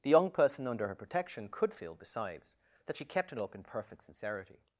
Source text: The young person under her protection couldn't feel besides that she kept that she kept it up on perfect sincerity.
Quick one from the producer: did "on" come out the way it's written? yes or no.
no